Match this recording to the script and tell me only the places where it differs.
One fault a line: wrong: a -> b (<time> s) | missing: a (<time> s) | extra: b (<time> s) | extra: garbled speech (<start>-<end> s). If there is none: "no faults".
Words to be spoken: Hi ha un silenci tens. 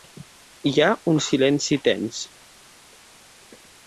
no faults